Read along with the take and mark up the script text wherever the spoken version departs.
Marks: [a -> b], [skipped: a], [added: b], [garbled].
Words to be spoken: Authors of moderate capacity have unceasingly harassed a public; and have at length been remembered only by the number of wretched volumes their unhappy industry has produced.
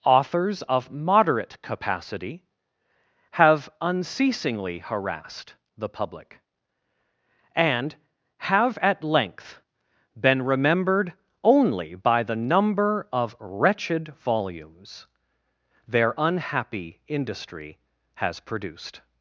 Authors of moderate capacity have unceasingly harassed [a -> the] public; and have at length been remembered only by the number of wretched volumes their unhappy industry has produced.